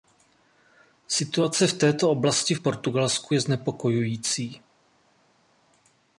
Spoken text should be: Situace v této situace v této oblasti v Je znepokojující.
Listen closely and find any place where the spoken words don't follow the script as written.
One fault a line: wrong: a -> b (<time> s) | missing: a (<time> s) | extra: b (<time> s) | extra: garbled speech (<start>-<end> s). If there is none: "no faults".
wrong: situace -> oblasti (2.1 s)
wrong: této oblasti v -> Portugalsku (2.6 s)